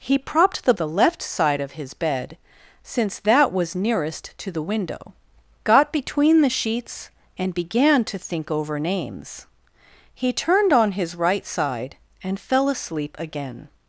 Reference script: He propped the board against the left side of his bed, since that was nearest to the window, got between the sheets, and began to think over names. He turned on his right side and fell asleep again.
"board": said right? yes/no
no